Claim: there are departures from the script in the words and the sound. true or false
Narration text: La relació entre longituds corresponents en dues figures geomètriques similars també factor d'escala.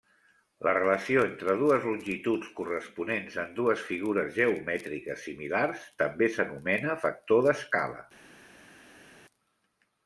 true